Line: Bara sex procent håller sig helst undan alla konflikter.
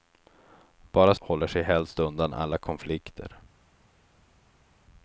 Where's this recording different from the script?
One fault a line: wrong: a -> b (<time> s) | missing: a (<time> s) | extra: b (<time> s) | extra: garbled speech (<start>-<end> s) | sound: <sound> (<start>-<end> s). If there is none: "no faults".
missing: sex procent (1.1 s)